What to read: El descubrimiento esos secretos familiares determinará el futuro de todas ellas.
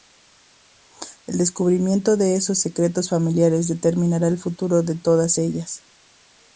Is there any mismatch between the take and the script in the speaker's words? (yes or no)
yes